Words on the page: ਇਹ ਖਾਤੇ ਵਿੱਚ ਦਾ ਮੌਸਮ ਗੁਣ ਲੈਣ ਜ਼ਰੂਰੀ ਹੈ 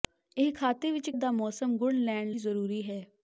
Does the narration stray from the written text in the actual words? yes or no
no